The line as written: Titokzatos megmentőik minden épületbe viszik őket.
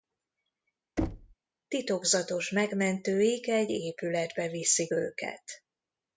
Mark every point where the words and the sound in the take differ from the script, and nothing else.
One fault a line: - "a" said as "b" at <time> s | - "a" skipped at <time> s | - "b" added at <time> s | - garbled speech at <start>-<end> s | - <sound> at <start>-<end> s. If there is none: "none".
- thud at 1.0-1.3 s
- "minden" said as "egy" at 3.5 s